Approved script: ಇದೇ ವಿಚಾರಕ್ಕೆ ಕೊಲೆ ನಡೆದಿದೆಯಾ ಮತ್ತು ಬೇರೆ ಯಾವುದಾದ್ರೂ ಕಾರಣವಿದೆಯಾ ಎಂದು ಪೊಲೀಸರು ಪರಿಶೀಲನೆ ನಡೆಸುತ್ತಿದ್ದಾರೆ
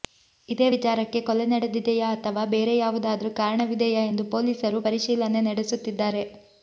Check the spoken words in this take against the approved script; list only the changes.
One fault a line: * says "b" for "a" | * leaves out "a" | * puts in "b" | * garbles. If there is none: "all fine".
* says "ಅಥವಾ" for "ಮತ್ತು"